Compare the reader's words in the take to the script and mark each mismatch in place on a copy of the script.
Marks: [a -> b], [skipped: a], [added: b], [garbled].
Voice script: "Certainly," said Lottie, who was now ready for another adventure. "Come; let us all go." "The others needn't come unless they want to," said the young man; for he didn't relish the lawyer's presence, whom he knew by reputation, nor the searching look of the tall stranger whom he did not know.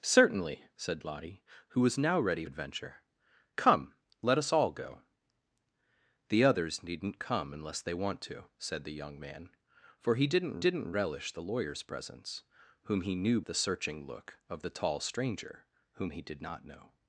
"Certainly," said Lottie, who was now ready [skipped: for another] adventure. "Come; let us all go." "The others needn't come unless they want to," said the young man; for he didn't [added: didn't] relish the lawyer's presence, whom he knew [skipped: by reputation, nor] the searching look of the tall stranger whom he did not know.